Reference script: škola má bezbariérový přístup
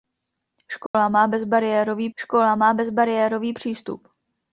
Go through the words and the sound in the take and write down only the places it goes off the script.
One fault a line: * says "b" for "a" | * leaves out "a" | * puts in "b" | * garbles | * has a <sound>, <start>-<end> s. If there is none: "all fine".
* has a dropout, 0.9-0.9 s
* puts in "škola má bezbariérový"